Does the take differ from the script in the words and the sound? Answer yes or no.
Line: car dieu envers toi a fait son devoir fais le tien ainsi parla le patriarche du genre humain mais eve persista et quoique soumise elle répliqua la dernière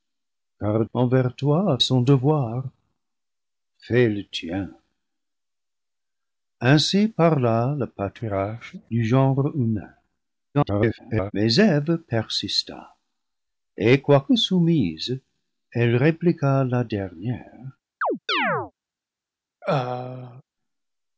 yes